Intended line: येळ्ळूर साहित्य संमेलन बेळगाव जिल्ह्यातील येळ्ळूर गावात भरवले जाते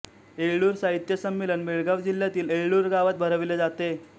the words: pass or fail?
pass